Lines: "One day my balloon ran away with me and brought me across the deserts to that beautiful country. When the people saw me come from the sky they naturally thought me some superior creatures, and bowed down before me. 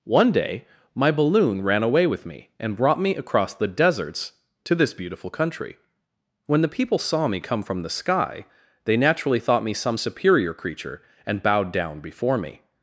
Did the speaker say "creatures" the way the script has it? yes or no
no